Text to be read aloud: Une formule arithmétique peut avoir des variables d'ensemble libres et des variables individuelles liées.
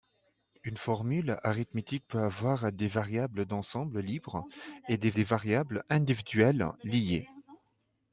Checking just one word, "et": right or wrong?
right